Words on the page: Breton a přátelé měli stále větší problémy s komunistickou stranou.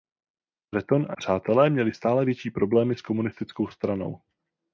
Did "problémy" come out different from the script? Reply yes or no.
no